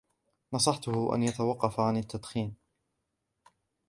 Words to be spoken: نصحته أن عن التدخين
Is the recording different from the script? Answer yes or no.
yes